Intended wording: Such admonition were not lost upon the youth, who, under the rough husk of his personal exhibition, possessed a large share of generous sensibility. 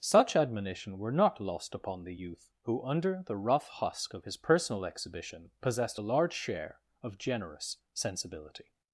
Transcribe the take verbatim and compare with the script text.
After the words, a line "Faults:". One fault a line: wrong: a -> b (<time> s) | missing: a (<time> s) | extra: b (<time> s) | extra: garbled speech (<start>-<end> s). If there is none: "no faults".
Such admonition were not lost upon the youth, who, under the rough husk of his personal exhibition, possessed a large share of generous sensibility.
Faults:
no faults